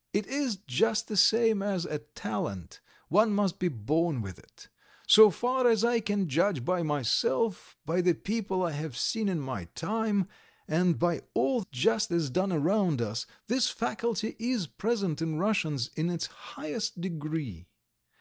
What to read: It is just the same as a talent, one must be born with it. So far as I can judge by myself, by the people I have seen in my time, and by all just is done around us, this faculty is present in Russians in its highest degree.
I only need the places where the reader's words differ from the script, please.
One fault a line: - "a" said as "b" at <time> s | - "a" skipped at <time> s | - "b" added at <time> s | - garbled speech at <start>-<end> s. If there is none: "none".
none